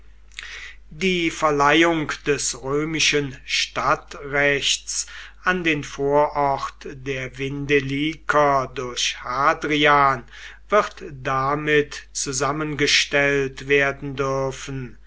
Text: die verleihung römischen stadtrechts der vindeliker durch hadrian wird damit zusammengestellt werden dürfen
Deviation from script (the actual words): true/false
true